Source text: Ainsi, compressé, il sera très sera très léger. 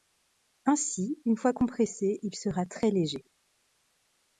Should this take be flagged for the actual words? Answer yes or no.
yes